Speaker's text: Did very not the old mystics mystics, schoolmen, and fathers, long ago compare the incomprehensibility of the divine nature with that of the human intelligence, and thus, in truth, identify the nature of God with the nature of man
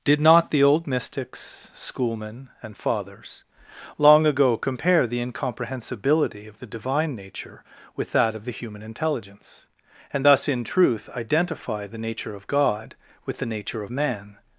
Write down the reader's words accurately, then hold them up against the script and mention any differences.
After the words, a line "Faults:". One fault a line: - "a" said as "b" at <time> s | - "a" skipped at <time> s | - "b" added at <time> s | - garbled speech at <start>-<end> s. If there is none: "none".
Did not the old mystics, schoolmen, and fathers, long ago compare the incomprehensibility of the divine nature with that of the human intelligence, and thus, in truth, identify the nature of God with the nature of man
Faults:
- "very" skipped at 0.2 s
- "mystics" skipped at 1.7 s